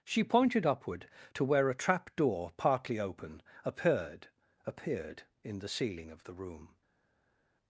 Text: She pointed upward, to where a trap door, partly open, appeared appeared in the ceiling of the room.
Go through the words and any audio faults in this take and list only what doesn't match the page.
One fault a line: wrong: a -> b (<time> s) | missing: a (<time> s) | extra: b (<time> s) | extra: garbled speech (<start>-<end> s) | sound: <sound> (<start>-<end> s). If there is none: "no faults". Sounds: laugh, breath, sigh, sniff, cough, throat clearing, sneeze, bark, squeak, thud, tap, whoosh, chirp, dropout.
no faults